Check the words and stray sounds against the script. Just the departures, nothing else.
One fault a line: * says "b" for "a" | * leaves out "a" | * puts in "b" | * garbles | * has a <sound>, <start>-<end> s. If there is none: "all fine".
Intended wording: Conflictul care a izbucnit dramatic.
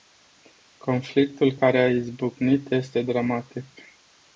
* puts in "este"